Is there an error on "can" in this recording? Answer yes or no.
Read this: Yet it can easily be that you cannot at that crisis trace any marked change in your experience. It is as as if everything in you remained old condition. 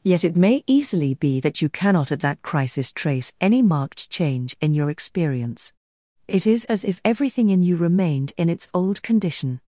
yes